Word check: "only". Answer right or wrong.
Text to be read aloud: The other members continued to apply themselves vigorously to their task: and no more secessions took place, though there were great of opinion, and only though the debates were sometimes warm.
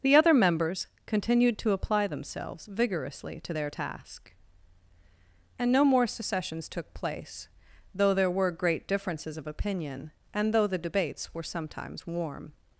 wrong